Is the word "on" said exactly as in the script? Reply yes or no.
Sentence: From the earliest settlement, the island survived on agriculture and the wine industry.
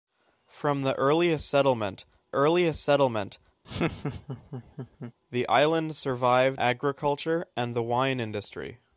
no